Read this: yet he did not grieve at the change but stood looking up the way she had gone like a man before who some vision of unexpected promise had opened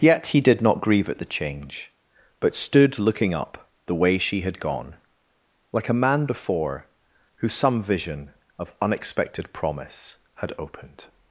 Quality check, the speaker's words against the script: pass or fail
pass